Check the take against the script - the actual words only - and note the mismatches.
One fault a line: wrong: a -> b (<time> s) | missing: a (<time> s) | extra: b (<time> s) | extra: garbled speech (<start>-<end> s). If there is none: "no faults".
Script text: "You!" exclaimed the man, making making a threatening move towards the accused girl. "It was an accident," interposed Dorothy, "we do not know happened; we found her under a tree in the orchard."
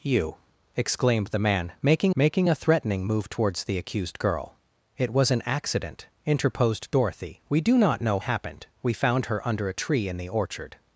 no faults